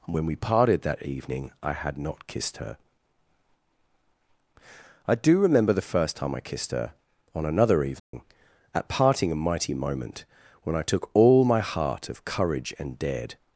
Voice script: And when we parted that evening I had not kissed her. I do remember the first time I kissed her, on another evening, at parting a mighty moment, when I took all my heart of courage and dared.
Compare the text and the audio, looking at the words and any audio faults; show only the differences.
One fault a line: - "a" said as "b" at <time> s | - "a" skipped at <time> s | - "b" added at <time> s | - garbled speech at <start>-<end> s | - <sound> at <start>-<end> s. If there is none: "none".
- dropout at 8.0-8.1 s